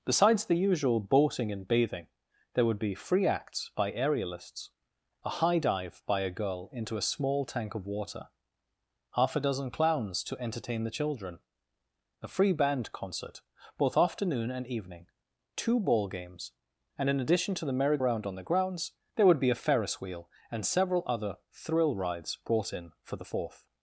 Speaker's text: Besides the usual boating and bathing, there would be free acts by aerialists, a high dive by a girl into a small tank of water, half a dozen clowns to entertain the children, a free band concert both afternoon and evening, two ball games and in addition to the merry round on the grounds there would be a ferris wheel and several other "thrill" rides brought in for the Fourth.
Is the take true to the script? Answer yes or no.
yes